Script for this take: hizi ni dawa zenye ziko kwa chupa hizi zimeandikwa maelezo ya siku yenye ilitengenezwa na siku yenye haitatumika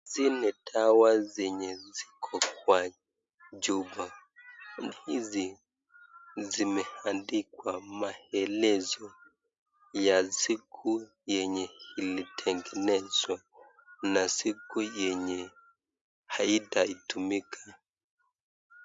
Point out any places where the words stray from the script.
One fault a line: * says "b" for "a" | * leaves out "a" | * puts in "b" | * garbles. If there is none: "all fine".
all fine